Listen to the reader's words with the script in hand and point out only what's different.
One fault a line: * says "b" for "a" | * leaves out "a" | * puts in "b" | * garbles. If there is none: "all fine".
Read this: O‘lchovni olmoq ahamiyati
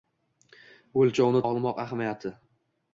all fine